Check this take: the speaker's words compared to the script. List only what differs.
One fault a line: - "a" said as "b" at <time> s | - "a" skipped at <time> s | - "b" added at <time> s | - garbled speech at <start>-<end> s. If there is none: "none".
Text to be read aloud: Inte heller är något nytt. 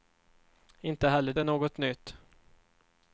none